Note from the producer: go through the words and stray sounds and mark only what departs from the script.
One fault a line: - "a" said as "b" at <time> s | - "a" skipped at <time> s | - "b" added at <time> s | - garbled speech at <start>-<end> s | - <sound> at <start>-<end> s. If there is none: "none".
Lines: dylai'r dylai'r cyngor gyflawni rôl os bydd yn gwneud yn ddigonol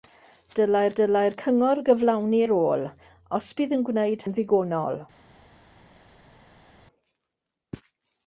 none